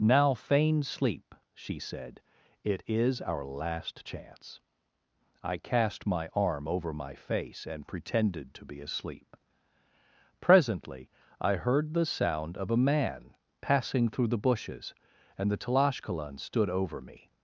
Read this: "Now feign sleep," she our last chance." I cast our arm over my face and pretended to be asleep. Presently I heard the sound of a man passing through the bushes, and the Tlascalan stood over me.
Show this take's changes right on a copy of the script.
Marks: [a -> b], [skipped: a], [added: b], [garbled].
"Now feign sleep," she [added: said it is] our last chance." I cast [our -> my] arm over my face and pretended to be asleep. Presently I heard the sound of a man passing through the bushes, and the Tlascalan stood over me.